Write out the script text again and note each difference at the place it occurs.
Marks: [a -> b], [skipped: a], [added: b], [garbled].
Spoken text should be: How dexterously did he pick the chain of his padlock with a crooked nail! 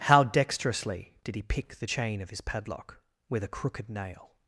How dexterously did he pick the chain of his padlock with a crooked nail!